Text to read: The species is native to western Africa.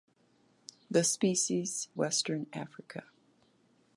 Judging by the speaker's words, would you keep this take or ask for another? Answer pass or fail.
fail